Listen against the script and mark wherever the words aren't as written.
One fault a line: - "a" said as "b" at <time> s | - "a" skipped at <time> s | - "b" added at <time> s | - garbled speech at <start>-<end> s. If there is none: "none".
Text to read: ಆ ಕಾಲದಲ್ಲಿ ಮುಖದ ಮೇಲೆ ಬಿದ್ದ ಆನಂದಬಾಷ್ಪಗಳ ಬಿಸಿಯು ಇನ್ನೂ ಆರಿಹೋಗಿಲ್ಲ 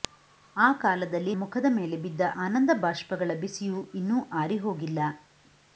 none